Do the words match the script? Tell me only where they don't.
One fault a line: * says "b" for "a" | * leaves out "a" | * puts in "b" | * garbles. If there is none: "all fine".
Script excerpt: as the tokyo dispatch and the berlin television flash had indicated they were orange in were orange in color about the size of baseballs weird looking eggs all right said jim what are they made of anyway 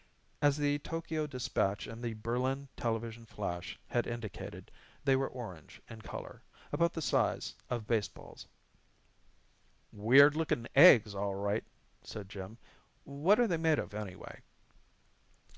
* leaves out "were orange in"